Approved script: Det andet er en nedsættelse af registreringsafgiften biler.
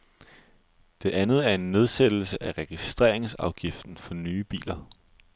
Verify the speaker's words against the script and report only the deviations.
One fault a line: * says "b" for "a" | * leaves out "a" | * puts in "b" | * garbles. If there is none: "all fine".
* puts in "for nye"